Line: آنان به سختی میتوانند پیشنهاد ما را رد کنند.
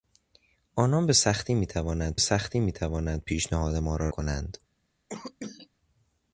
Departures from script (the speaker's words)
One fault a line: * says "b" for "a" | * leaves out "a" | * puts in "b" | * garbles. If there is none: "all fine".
* puts in "سختی میتوانند"
* leaves out "رد"